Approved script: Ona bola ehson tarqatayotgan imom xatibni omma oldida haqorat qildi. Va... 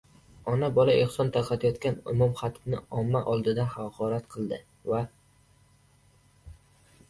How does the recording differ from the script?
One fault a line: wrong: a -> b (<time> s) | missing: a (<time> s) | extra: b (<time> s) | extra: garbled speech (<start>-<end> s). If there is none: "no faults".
no faults